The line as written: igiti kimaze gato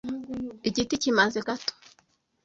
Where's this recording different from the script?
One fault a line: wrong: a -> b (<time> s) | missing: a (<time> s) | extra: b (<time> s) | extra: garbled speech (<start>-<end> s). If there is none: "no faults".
no faults